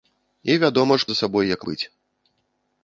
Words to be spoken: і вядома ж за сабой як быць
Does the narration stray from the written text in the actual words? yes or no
no